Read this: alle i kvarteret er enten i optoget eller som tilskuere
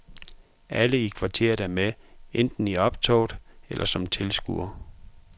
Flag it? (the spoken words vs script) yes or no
yes